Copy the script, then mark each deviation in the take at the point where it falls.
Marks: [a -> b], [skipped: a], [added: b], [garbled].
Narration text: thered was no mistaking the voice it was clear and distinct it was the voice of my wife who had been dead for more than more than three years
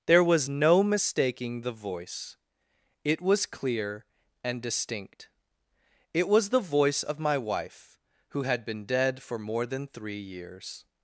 [thered -> there] was no mistaking the voice it was clear and distinct it was the voice of my wife who had been dead for more than [skipped: more than] three years